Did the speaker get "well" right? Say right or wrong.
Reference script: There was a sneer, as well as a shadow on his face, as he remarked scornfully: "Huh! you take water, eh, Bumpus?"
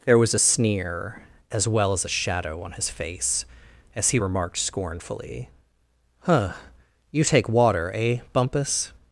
right